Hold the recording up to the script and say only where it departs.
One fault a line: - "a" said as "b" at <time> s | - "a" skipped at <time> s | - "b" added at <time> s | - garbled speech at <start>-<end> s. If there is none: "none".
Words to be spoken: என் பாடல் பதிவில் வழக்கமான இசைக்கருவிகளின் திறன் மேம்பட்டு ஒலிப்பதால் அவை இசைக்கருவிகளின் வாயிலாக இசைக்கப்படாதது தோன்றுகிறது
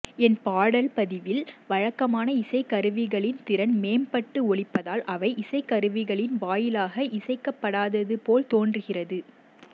- "போல்" added at 8.2 s